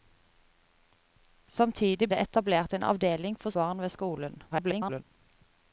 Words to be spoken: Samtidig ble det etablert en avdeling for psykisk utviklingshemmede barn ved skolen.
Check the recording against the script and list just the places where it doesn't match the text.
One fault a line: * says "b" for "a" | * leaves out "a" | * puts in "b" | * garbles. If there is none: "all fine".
* leaves out "ble"
* leaves out "psykisk utviklingshemmede"
* garbles